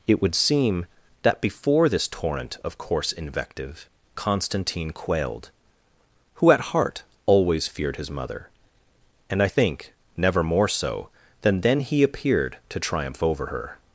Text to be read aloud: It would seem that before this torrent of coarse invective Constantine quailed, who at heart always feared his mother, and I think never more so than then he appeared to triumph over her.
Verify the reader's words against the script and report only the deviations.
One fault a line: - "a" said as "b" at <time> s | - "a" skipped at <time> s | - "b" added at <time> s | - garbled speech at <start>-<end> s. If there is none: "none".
none